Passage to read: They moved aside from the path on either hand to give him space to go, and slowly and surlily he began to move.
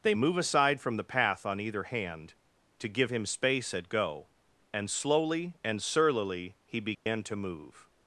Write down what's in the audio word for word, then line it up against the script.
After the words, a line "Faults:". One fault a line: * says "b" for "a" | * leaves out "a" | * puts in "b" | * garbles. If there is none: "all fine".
They move aside from the path on either hand to give him space at go, and slowly and surlily he began to move.
Faults:
* says "move" for "moved"
* says "at" for "to"